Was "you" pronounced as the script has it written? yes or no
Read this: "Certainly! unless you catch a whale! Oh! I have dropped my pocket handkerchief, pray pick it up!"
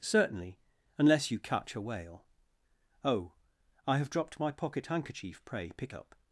yes